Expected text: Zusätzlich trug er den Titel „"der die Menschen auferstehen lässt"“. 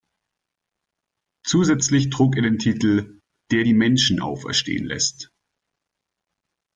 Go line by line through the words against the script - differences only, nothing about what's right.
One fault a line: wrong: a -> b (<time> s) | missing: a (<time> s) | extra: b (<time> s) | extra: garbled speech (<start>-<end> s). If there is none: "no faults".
no faults